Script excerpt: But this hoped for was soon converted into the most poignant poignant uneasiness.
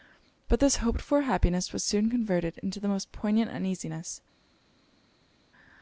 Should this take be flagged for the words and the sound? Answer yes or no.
yes